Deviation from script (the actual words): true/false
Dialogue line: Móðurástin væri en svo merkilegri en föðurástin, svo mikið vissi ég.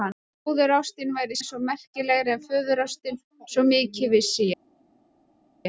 false